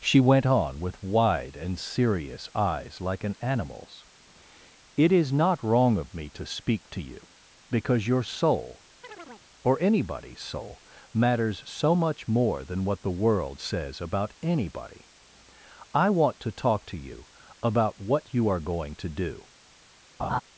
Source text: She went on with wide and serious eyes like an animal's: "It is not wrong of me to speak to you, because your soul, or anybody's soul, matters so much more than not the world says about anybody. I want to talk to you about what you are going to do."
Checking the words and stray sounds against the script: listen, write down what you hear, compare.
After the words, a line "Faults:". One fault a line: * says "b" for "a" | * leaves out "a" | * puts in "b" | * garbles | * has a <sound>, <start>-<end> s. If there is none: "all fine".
She went on with wide and serious eyes like an animal's: "It is not wrong of me to speak to you, because your soul, or anybody's soul, matters so much more than what the world says about anybody. I want to talk to you about what you are going to do."
Faults:
* has a chirp, 9.0-9.5 s
* says "what" for "not"
* has a laugh, 20.2-20.4 s